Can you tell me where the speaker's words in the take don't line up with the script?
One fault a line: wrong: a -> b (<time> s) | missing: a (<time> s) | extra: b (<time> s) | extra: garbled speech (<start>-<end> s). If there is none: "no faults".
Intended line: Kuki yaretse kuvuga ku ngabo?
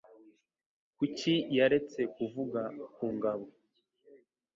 no faults